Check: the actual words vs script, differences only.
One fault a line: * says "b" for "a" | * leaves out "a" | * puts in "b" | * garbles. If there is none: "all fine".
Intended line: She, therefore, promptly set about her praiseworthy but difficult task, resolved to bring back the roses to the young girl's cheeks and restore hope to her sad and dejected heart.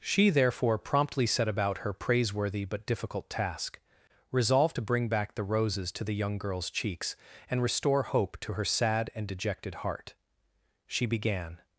* puts in "She began"